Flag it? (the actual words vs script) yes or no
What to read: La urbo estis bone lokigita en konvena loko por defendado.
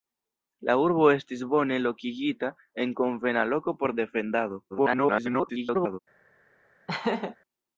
yes